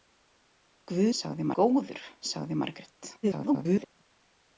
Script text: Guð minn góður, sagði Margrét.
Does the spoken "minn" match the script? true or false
false